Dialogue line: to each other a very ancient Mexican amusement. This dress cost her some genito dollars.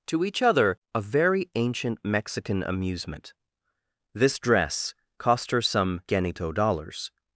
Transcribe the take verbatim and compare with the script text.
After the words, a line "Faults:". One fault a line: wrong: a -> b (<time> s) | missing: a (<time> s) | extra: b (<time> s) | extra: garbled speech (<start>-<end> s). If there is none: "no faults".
to each other a very ancient Mexican amusement. This dress cost her some genito dollars.
Faults:
no faults